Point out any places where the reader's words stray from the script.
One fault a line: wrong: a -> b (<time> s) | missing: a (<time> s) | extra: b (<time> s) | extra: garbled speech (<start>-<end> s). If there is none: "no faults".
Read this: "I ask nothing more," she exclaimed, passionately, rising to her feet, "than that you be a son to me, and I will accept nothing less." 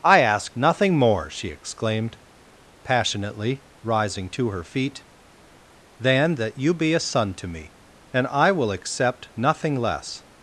no faults